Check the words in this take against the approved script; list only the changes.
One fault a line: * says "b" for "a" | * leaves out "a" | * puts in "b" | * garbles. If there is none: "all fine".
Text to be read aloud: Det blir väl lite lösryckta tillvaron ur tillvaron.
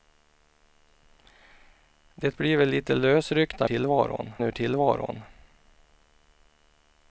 all fine